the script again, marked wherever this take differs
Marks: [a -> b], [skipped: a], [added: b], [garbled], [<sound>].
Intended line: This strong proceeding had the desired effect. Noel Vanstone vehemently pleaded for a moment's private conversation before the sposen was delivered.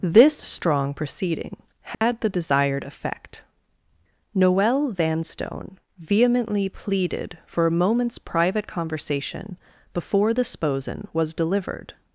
This strong proceeding had [dropout] the desired effect. Noel Vanstone vehemently pleaded for a moment's private conversation before the sposen was delivered.